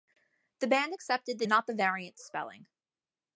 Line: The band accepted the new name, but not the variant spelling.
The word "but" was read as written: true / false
false